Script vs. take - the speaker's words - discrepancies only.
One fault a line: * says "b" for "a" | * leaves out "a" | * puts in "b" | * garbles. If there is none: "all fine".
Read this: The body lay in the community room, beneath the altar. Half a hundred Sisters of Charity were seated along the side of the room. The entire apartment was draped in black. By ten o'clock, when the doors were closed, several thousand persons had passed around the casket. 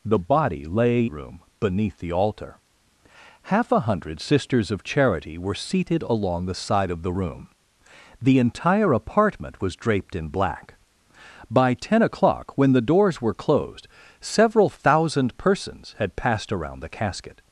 * leaves out "in the community"